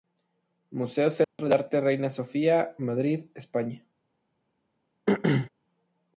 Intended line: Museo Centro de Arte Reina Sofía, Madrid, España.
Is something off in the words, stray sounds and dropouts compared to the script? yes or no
yes